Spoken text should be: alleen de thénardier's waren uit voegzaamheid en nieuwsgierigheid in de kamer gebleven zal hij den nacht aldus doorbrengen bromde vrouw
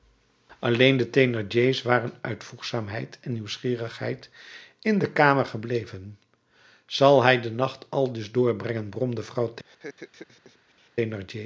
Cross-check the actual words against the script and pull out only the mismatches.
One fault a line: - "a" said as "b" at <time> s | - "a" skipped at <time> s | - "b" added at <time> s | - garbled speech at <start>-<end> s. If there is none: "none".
none